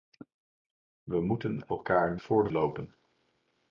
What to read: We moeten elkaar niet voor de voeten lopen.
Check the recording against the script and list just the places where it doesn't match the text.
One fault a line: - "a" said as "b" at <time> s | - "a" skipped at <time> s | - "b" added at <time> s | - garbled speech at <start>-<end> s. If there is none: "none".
- "niet" skipped at 2.2 s
- "voeten" skipped at 2.5 s